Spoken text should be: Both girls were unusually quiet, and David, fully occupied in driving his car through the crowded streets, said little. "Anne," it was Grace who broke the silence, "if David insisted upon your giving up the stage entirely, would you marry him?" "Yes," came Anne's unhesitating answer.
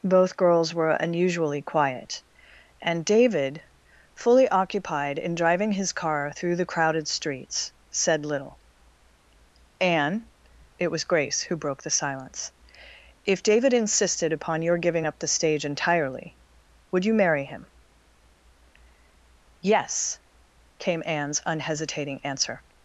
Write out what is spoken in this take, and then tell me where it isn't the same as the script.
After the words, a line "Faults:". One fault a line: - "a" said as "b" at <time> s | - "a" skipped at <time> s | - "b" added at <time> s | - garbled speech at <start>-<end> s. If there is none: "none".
Both girls were unusually quiet, and David, fully occupied in driving his car through the crowded streets, said little. "Anne," it was Grace who broke the silence, "if David insisted upon your giving up the stage entirely, would you marry him?" "Yes," came Anne's unhesitating answer.
Faults:
none